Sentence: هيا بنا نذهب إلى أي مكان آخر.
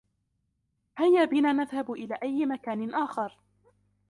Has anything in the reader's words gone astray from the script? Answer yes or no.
no